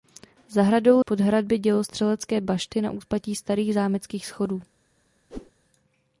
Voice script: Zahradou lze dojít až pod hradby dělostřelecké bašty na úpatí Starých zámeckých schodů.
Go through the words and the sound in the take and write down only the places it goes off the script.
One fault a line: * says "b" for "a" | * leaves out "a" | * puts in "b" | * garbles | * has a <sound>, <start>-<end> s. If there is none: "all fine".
* leaves out "lze dojít až"
* has a whoosh, 5.3-5.5 s